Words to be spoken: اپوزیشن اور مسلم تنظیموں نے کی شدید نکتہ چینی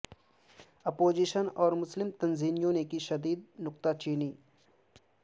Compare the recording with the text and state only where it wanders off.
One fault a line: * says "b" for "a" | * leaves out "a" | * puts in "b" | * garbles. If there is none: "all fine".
all fine